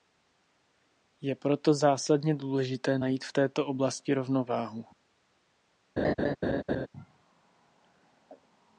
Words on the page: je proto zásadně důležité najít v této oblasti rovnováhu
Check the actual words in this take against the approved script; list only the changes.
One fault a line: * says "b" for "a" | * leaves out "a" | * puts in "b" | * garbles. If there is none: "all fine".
all fine